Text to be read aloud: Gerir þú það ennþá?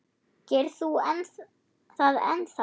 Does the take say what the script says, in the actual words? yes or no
yes